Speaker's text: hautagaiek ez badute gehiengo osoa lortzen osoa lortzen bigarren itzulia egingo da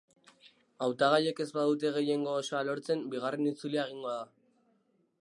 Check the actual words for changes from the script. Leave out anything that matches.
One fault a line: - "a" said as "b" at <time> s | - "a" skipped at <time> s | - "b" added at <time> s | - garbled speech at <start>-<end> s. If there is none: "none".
- "osoa lortzen" skipped at 3.1 s